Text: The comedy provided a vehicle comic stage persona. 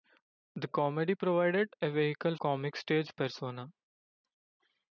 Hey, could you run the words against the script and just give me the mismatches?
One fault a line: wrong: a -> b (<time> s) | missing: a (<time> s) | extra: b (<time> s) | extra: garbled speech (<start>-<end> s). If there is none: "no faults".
no faults